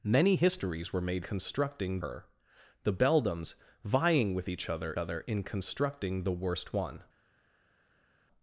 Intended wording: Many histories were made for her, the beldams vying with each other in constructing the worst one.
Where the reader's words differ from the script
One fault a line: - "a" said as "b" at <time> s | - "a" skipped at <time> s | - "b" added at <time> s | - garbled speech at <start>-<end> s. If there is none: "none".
- "for" said as "constructing" at 1.2 s
- "other" added at 5.0 s